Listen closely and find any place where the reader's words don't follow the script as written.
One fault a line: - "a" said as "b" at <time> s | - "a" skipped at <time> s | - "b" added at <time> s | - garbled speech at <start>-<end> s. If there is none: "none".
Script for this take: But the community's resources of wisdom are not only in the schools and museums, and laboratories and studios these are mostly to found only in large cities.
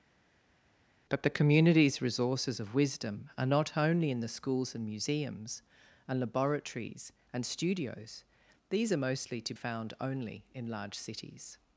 none